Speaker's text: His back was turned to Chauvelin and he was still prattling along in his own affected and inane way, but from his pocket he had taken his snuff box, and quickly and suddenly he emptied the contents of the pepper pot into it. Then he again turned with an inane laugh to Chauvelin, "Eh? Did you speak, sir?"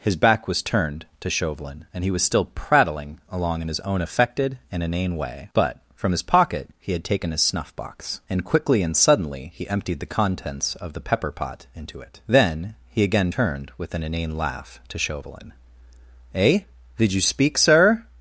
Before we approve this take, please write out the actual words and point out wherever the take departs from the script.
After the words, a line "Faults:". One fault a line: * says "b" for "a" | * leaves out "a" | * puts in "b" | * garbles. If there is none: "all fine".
His back was turned to Chauvelin and he was still prattling along in his own affected and inane way, but from his pocket he had taken his snuff box, and quickly and suddenly he emptied the contents of the pepper pot into it. Then he again turned with an inane laugh to Chauvelin, "Eh? Did you speak, sir?"
Faults:
all fine